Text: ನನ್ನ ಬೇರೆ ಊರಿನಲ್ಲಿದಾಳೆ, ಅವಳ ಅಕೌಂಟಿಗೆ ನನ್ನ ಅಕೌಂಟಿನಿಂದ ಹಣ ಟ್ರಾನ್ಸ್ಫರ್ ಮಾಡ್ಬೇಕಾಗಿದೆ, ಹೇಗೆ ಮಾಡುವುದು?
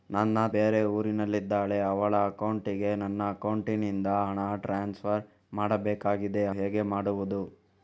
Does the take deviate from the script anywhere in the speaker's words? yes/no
no